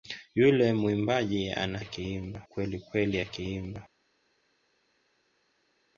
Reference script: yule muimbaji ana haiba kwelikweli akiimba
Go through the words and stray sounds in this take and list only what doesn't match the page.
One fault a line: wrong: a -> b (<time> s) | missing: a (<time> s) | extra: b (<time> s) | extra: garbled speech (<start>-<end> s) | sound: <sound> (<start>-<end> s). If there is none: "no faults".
wrong: haiba -> akiimba (1.8 s)